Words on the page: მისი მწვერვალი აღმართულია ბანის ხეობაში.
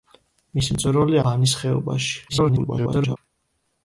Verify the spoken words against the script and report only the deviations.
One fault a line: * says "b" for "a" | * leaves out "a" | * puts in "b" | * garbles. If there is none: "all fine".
* leaves out "აღმართულია"
* garbles